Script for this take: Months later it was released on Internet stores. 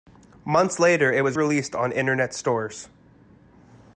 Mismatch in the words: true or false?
false